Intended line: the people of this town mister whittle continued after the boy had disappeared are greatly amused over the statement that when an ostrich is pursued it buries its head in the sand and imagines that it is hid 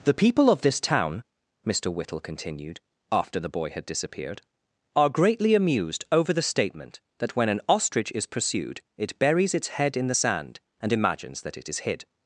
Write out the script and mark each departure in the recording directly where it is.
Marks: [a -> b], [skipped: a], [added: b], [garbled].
the people of this town mister whittle continued after the boy had disappeared are greatly amused over the statement that when an ostrich is pursued it buries its head in the sand and imagines that it is hid